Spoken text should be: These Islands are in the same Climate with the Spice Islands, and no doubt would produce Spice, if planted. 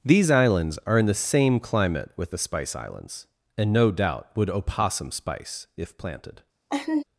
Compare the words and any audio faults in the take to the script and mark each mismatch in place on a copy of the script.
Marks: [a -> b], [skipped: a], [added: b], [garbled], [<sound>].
These Islands are in the same Climate with the Spice Islands, and no doubt would [produce -> opossum] Spice, if planted. [laugh]